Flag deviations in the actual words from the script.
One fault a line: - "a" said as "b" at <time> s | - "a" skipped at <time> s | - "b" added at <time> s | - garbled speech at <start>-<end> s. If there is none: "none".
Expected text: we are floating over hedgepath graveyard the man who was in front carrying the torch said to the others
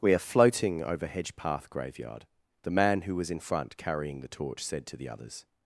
none